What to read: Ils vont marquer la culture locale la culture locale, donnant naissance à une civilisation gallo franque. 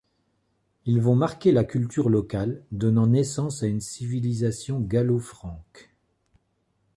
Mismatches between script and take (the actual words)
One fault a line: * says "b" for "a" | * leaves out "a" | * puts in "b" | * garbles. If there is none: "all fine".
* leaves out "la culture locale"